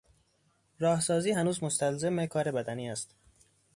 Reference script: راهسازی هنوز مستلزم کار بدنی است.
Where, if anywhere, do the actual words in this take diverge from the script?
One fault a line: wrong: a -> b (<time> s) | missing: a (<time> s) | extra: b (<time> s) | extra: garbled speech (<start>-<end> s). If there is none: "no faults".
no faults